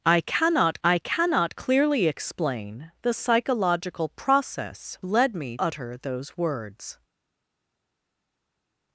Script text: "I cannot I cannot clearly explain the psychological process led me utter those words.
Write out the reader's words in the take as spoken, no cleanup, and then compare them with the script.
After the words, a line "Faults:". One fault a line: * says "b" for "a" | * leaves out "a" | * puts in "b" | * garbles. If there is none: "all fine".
"I cannot I cannot clearly explain the psychological process led me utter those words.
Faults:
all fine